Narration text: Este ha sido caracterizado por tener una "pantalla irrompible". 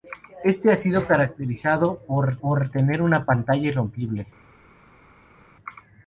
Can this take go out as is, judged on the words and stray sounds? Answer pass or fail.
fail